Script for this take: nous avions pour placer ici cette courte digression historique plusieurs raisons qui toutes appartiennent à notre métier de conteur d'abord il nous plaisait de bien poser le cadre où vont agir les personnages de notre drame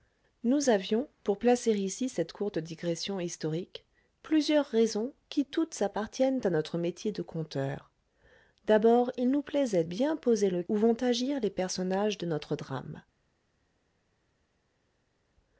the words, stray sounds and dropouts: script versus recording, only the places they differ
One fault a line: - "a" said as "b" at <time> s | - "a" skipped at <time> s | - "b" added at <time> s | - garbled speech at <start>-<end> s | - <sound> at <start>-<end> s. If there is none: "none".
- "de" skipped at 9.8 s
- "cadre" skipped at 10.6 s